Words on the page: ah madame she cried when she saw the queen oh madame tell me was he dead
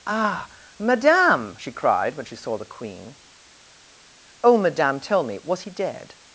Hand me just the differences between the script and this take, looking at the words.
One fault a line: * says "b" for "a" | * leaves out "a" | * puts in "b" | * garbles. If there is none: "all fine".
all fine